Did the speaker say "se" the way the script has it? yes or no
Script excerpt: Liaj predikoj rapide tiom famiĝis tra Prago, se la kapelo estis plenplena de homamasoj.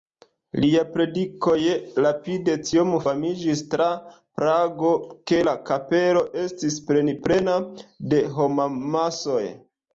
no